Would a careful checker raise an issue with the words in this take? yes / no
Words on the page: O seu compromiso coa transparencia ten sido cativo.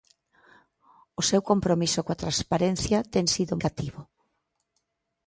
no